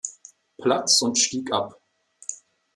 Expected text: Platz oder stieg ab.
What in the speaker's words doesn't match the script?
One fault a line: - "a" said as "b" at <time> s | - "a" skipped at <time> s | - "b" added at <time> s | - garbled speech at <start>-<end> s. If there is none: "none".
- "oder" said as "und" at 1.0 s